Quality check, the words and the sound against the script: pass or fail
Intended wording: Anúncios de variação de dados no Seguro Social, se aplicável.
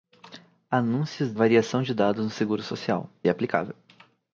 fail